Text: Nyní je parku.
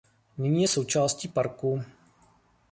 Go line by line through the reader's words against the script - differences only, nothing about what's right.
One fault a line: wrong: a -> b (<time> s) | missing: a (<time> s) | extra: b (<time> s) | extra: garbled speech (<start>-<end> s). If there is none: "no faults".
extra: součástí (0.6 s)